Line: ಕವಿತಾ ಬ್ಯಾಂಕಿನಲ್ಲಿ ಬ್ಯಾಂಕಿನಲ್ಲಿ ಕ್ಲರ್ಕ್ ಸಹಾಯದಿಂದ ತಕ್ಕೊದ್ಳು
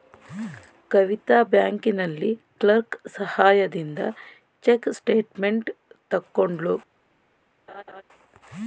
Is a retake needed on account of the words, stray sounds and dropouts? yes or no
yes